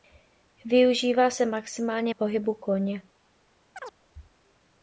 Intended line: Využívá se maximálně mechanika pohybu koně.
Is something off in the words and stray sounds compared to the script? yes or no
yes